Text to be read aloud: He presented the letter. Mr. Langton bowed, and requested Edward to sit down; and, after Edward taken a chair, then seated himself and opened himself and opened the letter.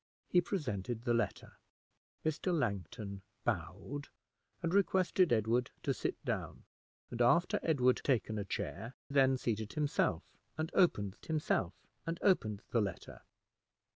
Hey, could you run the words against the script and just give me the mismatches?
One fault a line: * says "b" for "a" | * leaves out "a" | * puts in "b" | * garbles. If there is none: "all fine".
all fine